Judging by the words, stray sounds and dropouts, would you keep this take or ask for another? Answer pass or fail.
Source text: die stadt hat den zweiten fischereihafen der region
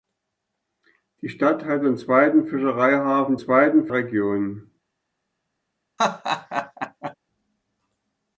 fail